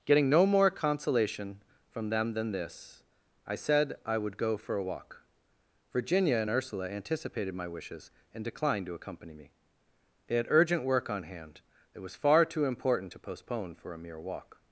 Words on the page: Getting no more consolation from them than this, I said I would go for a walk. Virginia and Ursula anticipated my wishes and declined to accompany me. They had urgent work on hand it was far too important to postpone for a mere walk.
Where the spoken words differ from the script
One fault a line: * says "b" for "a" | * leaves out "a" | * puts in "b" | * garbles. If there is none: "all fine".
all fine